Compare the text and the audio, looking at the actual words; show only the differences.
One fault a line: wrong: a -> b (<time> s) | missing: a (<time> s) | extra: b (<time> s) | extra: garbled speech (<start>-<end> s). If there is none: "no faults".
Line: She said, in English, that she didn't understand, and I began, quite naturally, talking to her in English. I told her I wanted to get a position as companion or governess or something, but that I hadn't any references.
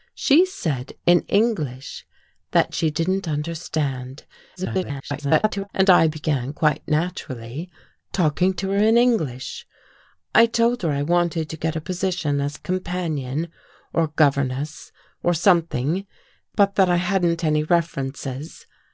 extra: garbled speech (4.6-5.7 s)